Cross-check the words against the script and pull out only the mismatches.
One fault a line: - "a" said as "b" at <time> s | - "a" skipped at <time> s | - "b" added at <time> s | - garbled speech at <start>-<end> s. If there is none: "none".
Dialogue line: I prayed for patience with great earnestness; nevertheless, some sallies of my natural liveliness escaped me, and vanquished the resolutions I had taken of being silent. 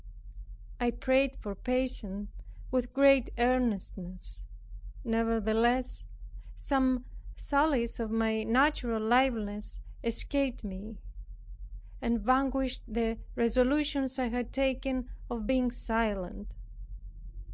none